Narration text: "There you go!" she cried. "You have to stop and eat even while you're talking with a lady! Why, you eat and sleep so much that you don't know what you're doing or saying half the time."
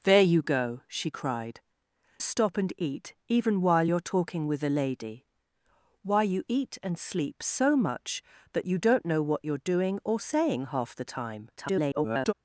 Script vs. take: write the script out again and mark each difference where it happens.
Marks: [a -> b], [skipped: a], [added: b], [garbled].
"There you go!" she cried. [skipped: "You have to] stop and eat even while you're talking with a lady! Why, you eat and sleep so much that you don't know what you're doing or saying half the time." [garbled]